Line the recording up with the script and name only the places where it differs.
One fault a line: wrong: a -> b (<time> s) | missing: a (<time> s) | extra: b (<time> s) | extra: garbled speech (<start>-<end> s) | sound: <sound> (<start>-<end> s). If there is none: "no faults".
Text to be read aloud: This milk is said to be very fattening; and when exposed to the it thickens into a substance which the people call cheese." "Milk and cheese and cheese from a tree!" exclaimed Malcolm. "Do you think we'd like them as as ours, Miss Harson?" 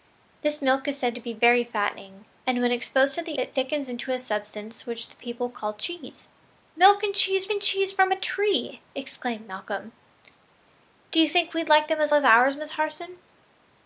no faults